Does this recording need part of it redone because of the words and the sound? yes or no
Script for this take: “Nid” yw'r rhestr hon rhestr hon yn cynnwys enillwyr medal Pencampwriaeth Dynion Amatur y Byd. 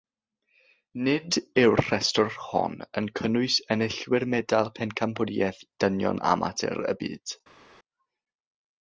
yes